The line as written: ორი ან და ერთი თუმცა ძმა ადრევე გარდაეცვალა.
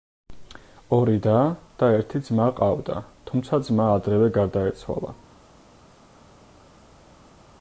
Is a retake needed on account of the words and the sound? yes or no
yes